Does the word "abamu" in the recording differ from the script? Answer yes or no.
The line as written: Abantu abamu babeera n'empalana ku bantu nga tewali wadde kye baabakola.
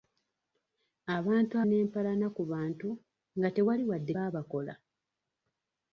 yes